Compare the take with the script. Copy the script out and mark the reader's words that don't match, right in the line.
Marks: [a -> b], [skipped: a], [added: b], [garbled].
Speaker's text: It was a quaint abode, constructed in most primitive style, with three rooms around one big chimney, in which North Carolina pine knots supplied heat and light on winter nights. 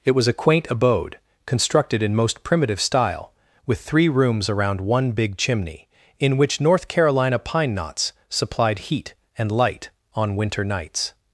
It was a quaint abode, constructed in most primitive style, with three rooms around one big chimney, in which North Carolina pine knots supplied heat and light on winter nights.